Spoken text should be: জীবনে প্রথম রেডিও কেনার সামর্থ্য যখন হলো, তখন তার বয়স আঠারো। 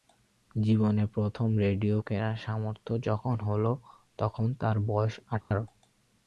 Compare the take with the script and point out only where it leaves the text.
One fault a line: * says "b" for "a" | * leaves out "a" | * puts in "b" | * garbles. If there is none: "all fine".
all fine